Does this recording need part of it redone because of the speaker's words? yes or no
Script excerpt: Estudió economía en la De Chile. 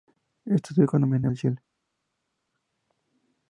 no